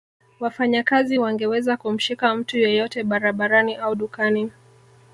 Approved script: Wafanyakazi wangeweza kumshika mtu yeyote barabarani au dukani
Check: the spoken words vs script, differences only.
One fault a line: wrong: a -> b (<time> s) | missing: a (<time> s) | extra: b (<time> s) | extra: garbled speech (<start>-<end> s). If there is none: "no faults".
no faults